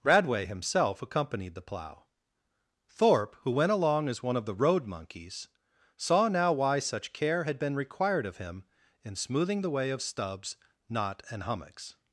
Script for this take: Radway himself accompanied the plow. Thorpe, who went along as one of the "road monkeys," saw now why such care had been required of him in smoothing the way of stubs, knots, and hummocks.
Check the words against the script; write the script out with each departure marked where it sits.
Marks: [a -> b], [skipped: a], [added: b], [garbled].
Radway himself accompanied the plow. Thorpe, who went along as one of the "road monkeys," saw now why such care had been required of him in smoothing the way of stubs, [knots, -> knot] and hummocks.